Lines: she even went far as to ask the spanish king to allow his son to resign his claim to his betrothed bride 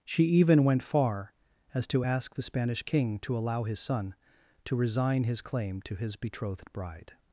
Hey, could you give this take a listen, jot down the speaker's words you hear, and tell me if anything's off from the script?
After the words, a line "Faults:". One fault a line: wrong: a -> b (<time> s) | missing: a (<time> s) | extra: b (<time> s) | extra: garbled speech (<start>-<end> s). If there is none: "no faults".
she even went far as to ask the spanish king to allow his son to resign his claim to his betrothed bride
Faults:
no faults